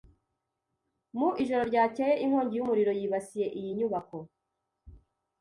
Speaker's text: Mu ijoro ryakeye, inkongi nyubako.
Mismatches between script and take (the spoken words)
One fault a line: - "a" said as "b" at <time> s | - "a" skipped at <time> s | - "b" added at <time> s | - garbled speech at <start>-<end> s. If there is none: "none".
- "y'umuriro yibasiye iyi" added at 2.6 s